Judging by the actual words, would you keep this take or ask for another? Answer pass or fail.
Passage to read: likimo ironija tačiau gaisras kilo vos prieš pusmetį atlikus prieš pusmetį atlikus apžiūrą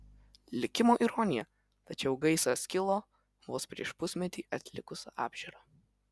fail